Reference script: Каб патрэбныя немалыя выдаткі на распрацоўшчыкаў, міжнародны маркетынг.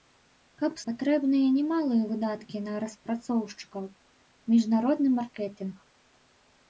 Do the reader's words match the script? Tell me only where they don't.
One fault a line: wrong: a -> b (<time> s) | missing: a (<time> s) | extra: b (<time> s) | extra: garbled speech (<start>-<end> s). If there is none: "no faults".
no faults